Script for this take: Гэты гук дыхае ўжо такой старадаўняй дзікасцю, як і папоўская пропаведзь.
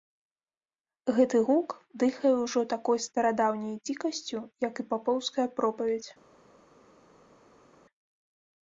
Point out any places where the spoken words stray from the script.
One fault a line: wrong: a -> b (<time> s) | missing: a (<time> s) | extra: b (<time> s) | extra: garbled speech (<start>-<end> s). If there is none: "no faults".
no faults